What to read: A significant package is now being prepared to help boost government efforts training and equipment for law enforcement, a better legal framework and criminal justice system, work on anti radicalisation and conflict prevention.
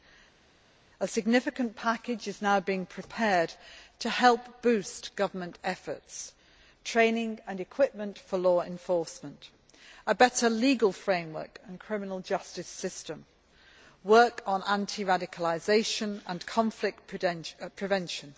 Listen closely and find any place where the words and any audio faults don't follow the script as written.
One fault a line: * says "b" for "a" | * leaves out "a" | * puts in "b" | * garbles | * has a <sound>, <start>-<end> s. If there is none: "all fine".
all fine